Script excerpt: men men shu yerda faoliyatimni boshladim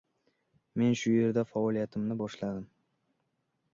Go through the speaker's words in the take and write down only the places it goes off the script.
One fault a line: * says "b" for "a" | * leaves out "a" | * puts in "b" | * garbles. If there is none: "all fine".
* leaves out "men"